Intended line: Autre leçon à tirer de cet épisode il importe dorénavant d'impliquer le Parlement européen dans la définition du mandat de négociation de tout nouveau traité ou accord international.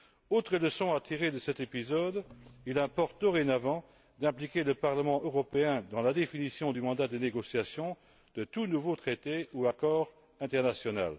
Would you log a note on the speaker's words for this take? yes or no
no